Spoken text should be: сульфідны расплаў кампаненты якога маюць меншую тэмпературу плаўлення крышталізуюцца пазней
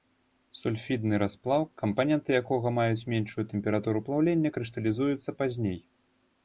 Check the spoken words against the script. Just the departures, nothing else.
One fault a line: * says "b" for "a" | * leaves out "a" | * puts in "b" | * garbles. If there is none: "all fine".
all fine